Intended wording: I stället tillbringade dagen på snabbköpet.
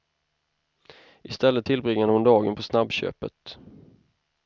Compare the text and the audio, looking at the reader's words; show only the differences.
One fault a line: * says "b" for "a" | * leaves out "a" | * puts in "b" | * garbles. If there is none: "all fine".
* puts in "hon"